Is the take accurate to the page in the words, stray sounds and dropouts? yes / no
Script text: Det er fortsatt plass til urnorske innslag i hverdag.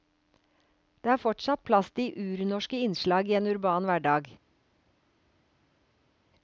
no